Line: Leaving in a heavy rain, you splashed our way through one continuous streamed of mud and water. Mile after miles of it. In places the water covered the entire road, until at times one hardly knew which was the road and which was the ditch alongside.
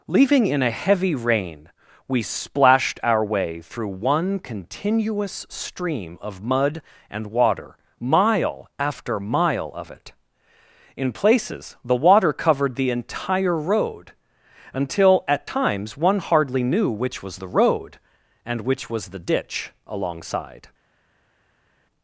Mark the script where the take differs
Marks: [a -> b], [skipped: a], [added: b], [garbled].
Leaving in a heavy rain, [you -> we] splashed our way through one continuous [streamed -> stream] of mud and water. Mile after [miles -> mile] of it. In places the water covered the entire road, until at times one hardly knew which was the road and which was the ditch alongside.